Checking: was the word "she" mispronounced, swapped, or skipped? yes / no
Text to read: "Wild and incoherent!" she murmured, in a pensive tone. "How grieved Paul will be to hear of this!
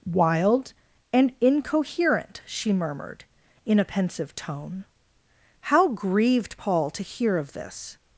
no